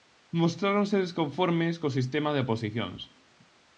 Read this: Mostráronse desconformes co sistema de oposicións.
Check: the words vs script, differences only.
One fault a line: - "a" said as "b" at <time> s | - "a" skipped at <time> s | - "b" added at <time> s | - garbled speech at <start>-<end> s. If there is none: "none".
none